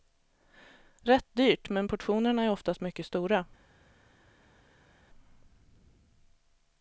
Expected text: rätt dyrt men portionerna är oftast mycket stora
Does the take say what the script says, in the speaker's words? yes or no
yes